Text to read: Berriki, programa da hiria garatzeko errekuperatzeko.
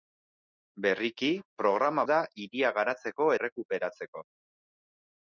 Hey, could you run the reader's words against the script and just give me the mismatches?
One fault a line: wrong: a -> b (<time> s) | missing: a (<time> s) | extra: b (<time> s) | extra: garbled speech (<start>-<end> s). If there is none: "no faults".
no faults